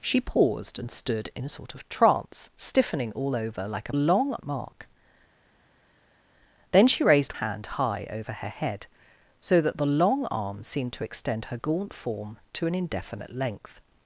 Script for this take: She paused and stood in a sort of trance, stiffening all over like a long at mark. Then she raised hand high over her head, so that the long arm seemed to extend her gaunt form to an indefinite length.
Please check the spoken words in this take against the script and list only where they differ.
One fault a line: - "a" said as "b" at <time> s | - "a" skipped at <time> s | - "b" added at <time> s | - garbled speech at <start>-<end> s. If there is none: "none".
none